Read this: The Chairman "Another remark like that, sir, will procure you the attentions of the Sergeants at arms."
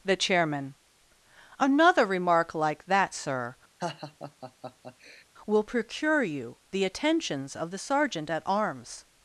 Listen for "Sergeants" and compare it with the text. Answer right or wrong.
wrong